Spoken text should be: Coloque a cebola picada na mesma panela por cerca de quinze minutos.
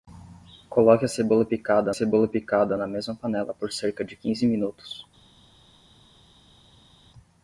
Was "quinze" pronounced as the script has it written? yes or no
yes